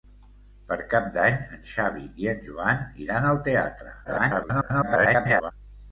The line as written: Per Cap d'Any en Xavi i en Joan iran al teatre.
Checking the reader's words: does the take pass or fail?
fail